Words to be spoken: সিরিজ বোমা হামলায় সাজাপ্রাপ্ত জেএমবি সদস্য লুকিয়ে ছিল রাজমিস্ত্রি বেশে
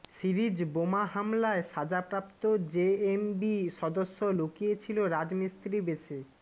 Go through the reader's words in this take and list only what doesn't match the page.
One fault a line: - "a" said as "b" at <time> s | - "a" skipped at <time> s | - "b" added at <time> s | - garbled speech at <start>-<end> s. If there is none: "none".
none